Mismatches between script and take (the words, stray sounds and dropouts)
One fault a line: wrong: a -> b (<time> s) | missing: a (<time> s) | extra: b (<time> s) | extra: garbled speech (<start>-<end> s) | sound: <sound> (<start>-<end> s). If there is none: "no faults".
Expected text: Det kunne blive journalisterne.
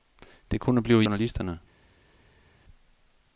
no faults